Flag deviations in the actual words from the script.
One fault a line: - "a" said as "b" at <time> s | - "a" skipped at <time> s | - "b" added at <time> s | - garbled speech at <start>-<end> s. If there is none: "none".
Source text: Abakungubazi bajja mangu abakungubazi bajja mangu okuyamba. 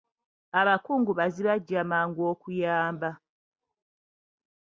- "abakungubazi bajja mangu" skipped at 2.2 s